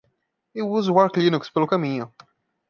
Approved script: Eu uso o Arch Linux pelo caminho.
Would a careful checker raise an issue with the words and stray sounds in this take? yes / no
no